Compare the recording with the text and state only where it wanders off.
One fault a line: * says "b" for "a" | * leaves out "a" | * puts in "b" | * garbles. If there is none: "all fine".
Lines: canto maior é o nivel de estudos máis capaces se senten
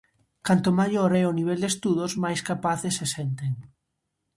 all fine